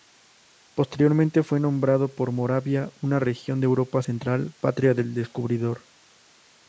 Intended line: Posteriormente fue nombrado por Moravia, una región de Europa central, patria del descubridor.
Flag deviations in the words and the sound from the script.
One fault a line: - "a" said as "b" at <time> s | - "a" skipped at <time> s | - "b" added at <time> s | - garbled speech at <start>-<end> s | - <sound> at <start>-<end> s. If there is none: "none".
none